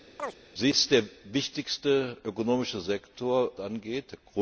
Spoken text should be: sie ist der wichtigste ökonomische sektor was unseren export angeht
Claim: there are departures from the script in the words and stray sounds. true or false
true